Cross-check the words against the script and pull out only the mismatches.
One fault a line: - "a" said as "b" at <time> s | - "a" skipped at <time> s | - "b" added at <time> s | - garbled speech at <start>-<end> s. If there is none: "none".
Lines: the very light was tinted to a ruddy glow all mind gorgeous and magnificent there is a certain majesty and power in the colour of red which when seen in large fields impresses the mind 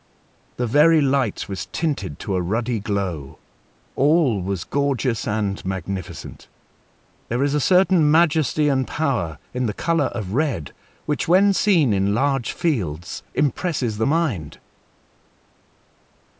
- "mind" said as "was" at 4.4 s